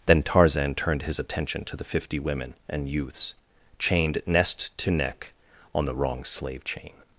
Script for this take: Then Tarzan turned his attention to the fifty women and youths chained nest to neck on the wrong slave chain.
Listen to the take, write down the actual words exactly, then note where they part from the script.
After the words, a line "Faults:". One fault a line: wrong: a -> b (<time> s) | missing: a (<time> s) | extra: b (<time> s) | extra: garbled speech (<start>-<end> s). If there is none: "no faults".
Then Tarzan turned his attention to the fifty women and youths chained nest to neck on the wrong slave chain.
Faults:
no faults